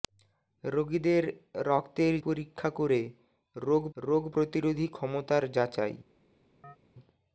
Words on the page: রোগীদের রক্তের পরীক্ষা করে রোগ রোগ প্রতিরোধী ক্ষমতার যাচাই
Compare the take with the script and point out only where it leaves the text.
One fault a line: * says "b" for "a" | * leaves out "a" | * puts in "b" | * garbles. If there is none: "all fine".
all fine